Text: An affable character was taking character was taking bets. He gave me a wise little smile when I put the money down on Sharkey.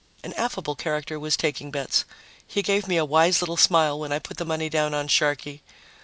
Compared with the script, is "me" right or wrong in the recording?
right